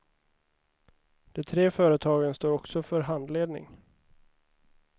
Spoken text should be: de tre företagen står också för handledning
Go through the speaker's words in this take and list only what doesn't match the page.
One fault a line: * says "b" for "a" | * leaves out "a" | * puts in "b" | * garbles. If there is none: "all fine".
all fine